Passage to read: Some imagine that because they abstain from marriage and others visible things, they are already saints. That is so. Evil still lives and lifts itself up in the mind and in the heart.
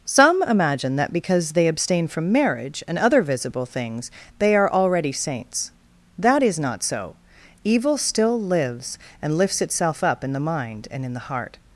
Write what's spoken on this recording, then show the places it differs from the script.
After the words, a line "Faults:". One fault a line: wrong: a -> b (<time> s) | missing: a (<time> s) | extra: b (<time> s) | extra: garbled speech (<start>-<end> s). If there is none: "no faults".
Some imagine that because they abstain from marriage and other visible things, they are already saints. That is not so. Evil still lives and lifts itself up in the mind and in the heart.
Faults:
wrong: others -> other (3.0 s)
extra: not (6.6 s)